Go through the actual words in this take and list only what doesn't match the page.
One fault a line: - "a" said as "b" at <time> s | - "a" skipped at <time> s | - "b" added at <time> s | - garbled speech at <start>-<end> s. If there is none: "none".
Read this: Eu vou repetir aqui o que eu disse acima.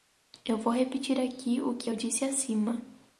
none